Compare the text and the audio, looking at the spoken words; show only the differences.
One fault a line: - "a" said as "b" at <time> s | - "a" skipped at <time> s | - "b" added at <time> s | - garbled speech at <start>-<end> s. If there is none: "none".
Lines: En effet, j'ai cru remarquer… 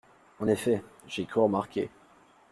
none